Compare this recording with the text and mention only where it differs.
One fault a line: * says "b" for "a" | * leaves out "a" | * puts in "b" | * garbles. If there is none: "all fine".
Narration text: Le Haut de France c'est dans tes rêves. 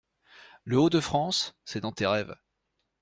all fine